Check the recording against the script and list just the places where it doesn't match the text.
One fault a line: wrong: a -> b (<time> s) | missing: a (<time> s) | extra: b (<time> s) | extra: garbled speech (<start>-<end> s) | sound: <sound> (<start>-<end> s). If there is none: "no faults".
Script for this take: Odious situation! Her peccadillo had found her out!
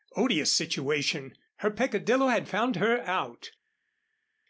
no faults